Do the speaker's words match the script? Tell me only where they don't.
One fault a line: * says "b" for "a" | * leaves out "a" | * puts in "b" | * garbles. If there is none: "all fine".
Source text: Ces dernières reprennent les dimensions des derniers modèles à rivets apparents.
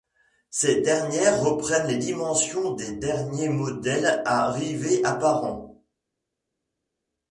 all fine